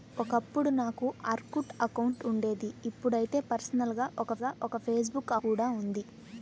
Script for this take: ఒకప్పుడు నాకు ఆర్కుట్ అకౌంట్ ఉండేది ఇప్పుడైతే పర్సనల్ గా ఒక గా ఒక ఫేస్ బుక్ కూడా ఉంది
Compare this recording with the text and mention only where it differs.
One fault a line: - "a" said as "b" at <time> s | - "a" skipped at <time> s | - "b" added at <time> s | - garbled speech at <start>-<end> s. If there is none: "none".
none